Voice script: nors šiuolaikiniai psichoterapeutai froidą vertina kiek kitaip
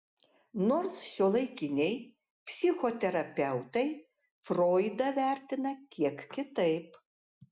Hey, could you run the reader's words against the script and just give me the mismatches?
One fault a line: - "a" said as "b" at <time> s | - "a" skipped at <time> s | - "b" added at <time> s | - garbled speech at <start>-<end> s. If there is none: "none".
none